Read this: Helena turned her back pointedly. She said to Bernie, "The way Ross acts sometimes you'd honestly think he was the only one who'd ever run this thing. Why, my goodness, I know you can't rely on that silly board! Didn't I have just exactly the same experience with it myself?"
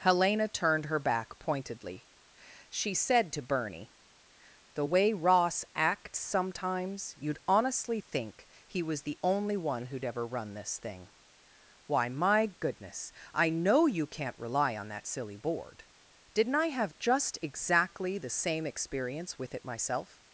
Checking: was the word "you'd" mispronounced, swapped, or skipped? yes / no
no